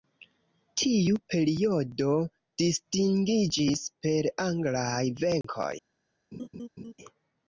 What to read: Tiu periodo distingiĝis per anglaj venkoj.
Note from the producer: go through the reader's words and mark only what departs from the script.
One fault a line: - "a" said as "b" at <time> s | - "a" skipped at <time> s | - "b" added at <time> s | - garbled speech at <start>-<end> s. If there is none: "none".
none